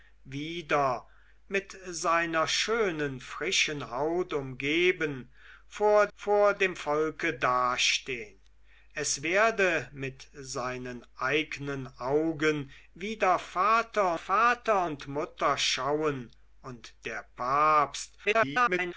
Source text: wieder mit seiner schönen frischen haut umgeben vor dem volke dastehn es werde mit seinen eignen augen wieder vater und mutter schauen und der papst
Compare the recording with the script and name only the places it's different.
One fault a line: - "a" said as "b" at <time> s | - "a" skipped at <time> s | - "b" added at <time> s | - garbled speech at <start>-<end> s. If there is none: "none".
- "vor" added at 6.1 s
- "vater" added at 14.1 s
- garbled speech at 18.2-18.9 s